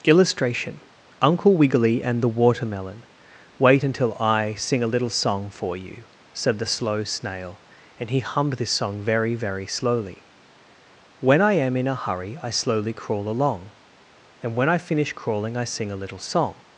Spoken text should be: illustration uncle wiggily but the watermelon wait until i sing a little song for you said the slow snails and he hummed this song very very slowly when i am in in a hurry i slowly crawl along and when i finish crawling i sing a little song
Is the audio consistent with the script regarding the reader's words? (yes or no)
no